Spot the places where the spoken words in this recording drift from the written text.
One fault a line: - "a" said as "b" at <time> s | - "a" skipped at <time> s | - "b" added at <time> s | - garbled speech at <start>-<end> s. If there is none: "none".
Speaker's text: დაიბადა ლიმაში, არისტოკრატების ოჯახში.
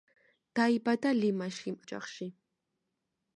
- "არისტოკრატების" skipped at 1.8 s